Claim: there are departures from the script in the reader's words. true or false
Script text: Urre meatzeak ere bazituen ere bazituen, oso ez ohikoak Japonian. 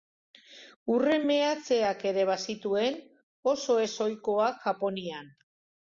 true